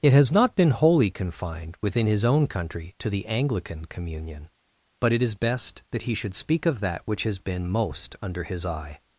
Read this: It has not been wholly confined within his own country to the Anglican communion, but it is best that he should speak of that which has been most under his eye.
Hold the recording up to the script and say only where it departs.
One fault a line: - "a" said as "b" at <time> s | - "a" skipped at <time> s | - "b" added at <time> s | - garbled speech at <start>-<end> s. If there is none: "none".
none